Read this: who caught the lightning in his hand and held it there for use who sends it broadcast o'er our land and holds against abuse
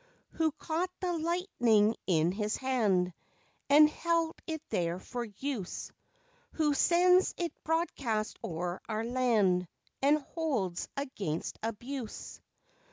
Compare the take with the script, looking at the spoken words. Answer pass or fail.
pass